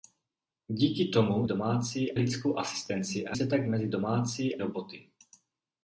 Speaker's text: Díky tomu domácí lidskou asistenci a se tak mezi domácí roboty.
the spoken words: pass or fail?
pass